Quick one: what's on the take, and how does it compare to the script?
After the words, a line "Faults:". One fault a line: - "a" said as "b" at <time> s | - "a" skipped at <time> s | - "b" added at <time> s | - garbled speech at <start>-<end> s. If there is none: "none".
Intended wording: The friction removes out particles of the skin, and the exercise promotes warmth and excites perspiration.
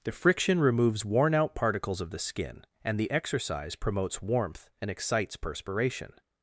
The friction removes worn out particles of the skin, and the exercise promotes warmth and excites perspiration.
Faults:
- "worn" added at 1.1 s